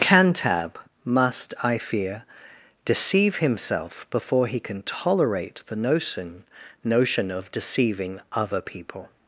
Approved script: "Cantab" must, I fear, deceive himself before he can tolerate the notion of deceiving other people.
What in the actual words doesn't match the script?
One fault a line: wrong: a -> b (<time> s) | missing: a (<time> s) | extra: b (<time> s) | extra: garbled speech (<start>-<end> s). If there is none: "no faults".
extra: notion (6.8 s)